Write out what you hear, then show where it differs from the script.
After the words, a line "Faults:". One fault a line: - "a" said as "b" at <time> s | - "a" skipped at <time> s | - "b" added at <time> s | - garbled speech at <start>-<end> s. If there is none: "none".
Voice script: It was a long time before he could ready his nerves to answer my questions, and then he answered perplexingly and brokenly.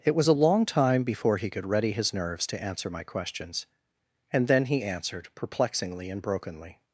It was a long time before he could ready his nerves to answer my questions, and then he answered perplexingly and brokenly.
Faults:
none